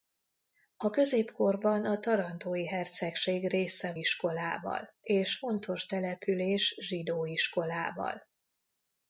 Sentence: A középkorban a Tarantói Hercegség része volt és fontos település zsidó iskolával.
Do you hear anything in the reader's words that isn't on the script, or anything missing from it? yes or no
yes